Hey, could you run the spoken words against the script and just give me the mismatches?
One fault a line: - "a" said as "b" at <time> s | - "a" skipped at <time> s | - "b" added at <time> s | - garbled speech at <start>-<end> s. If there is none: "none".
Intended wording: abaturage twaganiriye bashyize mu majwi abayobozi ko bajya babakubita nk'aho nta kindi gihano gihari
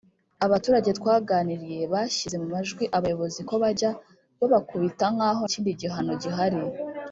- "nta" skipped at 5.4 s